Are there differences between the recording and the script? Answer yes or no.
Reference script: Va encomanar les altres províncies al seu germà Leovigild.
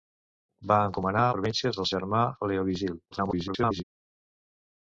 yes